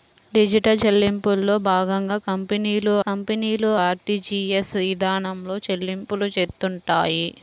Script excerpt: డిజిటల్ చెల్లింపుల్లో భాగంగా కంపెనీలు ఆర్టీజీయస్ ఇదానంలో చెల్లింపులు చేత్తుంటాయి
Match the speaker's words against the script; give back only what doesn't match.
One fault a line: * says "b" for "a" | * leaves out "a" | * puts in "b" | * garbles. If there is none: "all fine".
* puts in "కంపెనీలు"